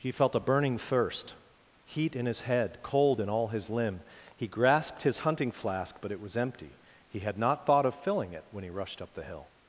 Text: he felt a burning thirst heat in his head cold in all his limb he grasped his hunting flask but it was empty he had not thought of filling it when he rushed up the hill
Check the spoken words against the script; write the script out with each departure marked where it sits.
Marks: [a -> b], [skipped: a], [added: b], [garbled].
he felt a burning thirst heat in his head cold in all his limb he grasped his hunting flask but it was empty he had not thought of filling it when he rushed up the hill